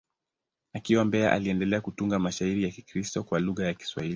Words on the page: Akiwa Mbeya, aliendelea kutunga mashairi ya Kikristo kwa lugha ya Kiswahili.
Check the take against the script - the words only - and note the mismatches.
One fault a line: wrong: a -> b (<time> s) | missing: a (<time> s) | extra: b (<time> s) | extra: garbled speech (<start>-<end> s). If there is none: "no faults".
no faults